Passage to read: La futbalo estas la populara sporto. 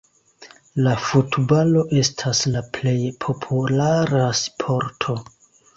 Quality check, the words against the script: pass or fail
fail